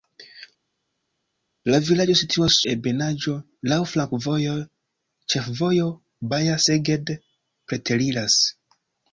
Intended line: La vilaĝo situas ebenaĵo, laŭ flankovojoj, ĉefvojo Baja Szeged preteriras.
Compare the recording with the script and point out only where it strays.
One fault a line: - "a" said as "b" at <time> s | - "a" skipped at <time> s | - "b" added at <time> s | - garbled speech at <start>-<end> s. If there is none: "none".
none